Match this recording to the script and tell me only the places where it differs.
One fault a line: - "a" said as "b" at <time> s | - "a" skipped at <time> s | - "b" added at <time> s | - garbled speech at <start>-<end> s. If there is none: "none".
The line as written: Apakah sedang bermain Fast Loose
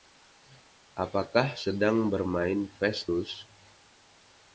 none